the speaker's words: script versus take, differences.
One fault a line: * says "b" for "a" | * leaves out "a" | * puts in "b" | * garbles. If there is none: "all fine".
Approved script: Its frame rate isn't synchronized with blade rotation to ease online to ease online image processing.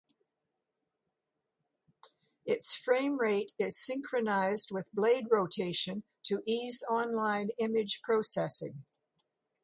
* says "is" for "isn't"
* leaves out "to ease online"